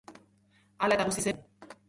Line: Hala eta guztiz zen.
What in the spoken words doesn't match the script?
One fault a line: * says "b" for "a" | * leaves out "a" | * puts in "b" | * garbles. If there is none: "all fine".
all fine